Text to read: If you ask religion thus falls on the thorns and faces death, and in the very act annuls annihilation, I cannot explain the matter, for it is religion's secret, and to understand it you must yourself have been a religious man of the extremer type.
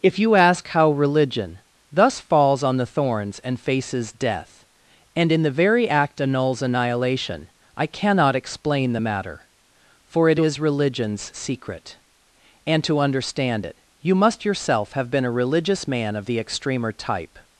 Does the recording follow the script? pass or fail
fail